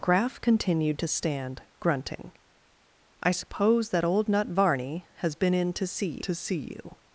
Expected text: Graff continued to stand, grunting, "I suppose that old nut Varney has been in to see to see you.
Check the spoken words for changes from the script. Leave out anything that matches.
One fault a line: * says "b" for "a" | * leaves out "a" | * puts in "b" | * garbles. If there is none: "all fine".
all fine